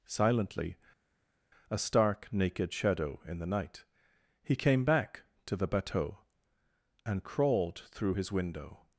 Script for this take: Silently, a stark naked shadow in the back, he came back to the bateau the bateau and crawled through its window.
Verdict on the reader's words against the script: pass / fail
fail